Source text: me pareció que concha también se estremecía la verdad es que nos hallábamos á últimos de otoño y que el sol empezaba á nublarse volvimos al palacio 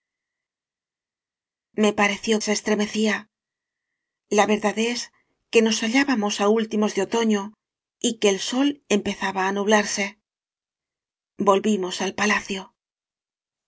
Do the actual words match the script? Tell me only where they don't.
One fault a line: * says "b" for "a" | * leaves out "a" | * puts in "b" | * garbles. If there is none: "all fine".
* leaves out "que concha también"